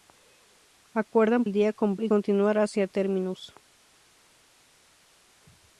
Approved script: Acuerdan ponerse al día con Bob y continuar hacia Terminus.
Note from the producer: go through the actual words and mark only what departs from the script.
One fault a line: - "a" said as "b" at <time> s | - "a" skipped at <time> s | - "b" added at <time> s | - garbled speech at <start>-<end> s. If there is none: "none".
- "ponerse" skipped at 1.4 s
- "Bob" skipped at 2.0 s